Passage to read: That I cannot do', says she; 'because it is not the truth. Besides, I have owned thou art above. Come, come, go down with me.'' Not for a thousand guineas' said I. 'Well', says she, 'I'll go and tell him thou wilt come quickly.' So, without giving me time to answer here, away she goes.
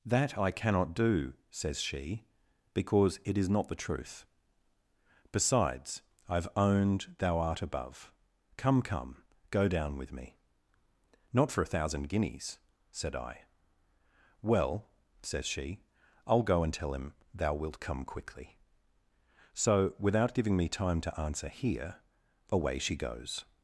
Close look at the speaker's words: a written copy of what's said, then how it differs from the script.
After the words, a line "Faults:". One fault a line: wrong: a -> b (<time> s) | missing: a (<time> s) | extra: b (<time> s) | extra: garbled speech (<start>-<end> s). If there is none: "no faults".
That I cannot do', says she; 'because it is not the truth. Besides, I have owned thou art above. Come, come, go down with me.'' Not for a thousand guineas' said I. 'Well', says she, 'I'll go and tell him thou wilt come quickly.' So, without giving me time to answer here, away she goes.
Faults:
no faults